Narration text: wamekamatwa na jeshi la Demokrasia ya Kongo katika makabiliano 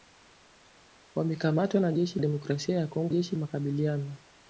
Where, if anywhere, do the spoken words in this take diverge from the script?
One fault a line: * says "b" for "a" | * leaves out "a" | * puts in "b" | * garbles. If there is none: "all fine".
* leaves out "la"
* says "jeshi" for "katika"